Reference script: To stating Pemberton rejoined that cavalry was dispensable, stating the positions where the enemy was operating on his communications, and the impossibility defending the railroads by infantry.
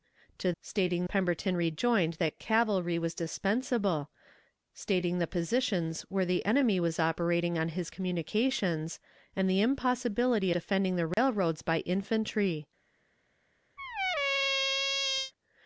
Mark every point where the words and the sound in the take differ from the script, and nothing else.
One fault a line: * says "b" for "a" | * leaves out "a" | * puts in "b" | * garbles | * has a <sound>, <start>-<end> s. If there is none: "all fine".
* has a dropout, 11.1-11.2 s
* has a squeak, 13.8-15.3 s